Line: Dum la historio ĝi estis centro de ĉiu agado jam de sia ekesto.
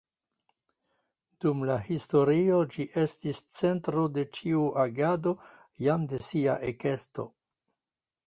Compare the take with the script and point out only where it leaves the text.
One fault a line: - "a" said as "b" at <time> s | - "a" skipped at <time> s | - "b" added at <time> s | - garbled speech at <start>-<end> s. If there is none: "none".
none